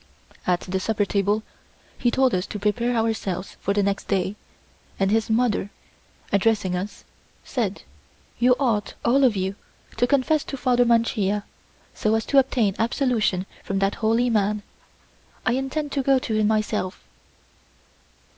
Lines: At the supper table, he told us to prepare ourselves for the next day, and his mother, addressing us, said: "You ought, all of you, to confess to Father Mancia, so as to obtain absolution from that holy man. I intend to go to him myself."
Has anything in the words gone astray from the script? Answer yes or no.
no